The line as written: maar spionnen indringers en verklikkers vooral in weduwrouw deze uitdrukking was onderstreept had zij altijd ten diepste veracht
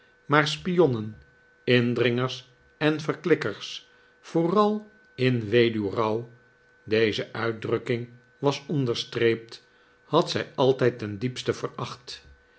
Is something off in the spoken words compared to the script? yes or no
no